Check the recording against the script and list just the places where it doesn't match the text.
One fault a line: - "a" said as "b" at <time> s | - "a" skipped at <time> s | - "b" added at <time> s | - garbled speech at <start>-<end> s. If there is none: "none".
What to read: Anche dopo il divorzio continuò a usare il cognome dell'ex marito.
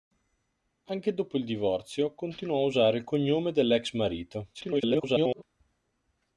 - garbled speech at 4.5-5.4 s